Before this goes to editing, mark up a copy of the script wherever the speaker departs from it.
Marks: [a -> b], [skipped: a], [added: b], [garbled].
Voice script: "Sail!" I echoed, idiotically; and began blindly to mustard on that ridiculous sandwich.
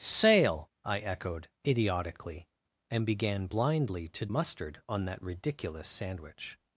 "Sail!" I echoed, idiotically; and began blindly to mustard on that ridiculous sandwich.